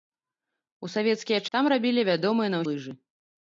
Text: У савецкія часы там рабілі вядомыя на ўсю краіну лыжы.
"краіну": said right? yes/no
no